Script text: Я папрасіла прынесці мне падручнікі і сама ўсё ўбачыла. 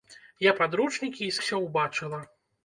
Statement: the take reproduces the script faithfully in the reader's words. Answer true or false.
false